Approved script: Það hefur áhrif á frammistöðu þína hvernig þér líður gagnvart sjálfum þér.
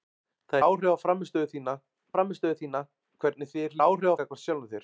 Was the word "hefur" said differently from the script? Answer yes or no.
yes